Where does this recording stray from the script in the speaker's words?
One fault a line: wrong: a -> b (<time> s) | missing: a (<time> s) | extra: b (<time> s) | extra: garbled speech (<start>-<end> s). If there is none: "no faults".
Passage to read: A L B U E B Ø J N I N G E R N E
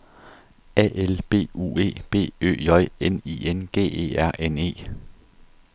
no faults